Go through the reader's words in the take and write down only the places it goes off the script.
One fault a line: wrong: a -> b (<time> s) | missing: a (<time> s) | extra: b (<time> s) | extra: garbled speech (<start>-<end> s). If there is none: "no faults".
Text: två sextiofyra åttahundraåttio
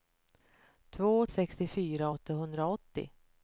no faults